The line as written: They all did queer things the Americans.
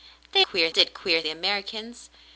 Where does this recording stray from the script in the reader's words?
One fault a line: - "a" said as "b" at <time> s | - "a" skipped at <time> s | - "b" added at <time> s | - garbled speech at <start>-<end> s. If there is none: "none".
- "all" said as "queer" at 0.4 s
- "things" skipped at 1.2 s